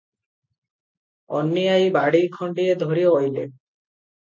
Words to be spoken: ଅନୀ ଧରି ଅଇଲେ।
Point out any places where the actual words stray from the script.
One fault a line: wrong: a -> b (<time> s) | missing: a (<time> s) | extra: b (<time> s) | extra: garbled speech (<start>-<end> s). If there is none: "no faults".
extra: ଆଈ ବାଡ଼ି ଖଣ୍ଡିଏ (1.7 s)